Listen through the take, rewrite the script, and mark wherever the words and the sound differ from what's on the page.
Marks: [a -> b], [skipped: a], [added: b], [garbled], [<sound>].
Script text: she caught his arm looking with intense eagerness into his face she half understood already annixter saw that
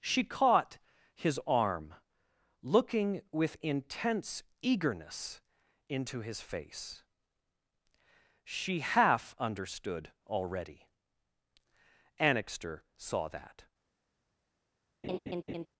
she caught his arm looking with intense eagerness into his face she half understood already annixter saw that [laugh]